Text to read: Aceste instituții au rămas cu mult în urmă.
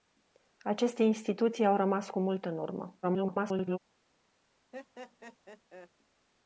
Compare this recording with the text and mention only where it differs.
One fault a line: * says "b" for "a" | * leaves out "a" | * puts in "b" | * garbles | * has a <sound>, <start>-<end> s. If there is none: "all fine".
* garbles
* has a laugh, 4.7-5.9 s